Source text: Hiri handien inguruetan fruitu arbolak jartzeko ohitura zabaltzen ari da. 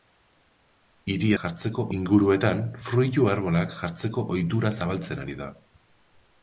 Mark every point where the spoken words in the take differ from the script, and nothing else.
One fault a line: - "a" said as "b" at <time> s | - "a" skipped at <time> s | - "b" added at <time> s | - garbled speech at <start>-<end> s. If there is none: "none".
- "handien" said as "jartzeko" at 1.4 s